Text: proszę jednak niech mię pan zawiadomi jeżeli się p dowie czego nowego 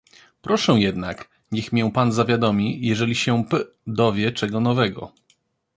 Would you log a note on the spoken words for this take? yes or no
no